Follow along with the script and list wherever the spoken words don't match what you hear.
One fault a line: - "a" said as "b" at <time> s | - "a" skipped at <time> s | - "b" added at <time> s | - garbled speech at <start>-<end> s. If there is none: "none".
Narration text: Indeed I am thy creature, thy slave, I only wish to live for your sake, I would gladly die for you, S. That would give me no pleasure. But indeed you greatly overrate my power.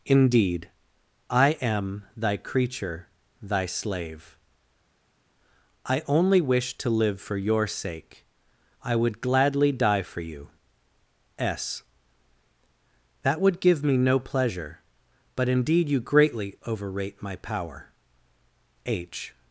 - "H" added at 18.8 s